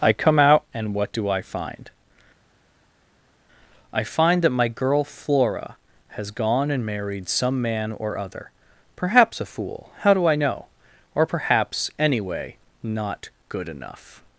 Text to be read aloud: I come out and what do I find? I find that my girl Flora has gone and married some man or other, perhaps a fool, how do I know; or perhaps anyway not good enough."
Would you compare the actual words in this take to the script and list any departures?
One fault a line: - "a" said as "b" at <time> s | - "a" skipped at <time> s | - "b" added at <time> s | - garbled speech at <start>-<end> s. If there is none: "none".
none